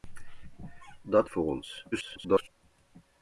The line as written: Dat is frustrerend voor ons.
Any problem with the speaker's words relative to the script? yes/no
yes